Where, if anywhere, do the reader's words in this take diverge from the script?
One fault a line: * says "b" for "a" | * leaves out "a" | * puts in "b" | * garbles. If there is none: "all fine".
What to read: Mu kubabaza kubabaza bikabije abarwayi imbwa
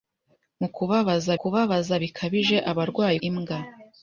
all fine